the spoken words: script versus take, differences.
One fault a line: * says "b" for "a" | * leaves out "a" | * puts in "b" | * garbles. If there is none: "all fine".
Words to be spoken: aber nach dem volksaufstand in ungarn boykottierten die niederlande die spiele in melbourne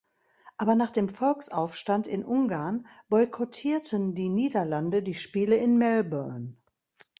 all fine